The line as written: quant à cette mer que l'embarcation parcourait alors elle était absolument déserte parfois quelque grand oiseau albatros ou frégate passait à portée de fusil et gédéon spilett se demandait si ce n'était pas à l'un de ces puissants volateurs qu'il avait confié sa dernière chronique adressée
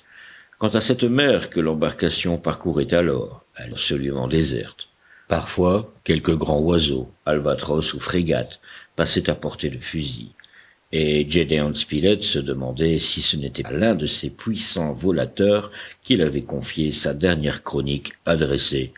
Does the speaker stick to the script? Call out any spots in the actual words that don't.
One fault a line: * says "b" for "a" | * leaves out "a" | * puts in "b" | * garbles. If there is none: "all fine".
* leaves out "était"
* leaves out "pas"